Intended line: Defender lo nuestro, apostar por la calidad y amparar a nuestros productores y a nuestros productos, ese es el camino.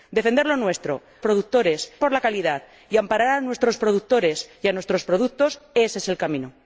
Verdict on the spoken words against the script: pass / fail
fail